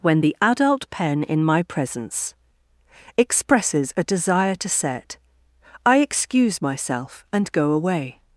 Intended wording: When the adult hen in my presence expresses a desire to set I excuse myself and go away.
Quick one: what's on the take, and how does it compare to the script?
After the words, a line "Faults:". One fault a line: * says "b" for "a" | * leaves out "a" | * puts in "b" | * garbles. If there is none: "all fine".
When the adult pen in my presence expresses a desire to set I excuse myself and go away.
Faults:
* says "pen" for "hen"